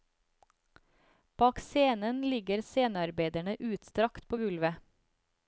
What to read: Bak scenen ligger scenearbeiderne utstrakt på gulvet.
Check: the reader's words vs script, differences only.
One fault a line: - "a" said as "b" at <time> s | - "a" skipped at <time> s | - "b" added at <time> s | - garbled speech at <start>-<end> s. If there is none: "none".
none